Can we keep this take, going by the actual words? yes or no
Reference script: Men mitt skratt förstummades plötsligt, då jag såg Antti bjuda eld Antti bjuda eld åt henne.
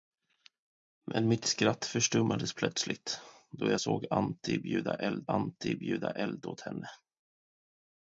yes